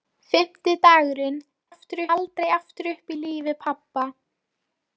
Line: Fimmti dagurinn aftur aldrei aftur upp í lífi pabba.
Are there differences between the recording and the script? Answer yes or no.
no